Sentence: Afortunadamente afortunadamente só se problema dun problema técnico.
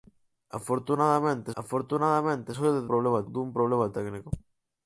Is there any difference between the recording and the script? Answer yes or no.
no